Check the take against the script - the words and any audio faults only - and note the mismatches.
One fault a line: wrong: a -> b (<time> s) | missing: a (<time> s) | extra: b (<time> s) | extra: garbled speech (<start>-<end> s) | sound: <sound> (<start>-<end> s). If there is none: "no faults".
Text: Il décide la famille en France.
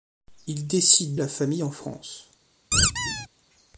sound: squeak (2.7-3.3 s)